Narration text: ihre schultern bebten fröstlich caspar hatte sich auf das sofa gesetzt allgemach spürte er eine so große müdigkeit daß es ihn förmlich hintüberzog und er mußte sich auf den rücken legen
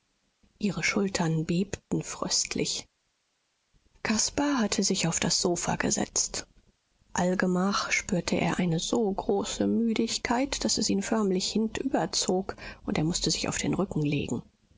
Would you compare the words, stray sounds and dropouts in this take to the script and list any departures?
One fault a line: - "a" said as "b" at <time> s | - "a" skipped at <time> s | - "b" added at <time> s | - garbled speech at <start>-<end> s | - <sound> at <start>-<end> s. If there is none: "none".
none